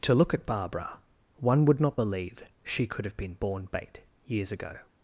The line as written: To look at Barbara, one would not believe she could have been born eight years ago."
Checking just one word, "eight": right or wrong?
wrong